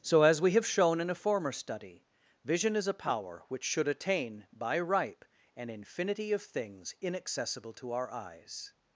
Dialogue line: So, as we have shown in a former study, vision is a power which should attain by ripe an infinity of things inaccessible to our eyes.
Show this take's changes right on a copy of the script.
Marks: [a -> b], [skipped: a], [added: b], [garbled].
So, as we have shown in a former study, vision is a power which should attain by ripe an infinity of things inaccessible to our eyes.